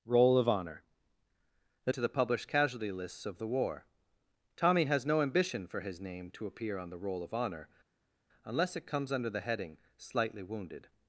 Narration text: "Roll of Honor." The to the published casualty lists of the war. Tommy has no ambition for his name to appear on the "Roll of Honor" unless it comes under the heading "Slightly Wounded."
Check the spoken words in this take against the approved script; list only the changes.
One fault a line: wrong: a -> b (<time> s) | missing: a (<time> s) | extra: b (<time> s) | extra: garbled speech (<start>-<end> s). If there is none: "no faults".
no faults